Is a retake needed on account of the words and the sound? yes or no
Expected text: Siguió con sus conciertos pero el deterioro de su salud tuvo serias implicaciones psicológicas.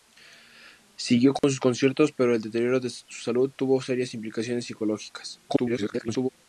yes